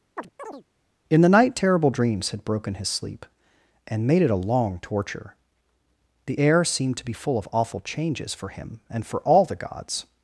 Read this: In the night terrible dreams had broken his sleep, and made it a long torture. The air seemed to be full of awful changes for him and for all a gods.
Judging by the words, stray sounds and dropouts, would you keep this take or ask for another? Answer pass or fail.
fail